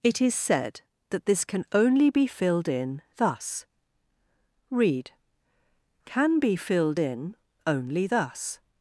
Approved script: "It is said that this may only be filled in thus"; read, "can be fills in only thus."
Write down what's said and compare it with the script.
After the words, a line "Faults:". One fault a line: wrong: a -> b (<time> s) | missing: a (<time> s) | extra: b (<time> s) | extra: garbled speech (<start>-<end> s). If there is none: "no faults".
"It is said that this can only be filled in thus"; read, "can be filled in only thus."
Faults:
wrong: may -> can (1.4 s)
wrong: fills -> filled (6.5 s)